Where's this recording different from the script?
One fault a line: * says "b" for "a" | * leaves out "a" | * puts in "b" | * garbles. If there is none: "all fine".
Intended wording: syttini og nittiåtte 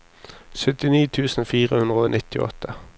* puts in "tusen fire hundre"